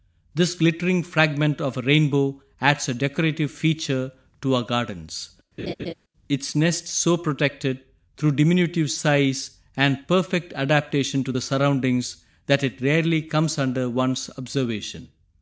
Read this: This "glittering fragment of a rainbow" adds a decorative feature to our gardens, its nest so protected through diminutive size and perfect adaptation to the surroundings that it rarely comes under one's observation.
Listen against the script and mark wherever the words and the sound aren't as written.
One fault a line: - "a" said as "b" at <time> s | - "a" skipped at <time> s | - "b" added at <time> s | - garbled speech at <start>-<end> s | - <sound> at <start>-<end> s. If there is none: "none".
- laugh at 5.6-5.9 s